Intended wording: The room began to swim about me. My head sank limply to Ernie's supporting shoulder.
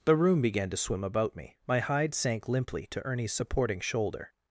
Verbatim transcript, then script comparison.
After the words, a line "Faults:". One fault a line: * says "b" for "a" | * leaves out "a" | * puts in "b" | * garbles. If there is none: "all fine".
The room began to swim about me. My hide sank limply to Ernie's supporting shoulder.
Faults:
* says "hide" for "head"